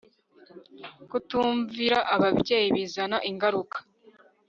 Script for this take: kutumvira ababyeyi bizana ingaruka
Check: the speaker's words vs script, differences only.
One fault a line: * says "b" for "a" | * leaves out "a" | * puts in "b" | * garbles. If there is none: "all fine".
all fine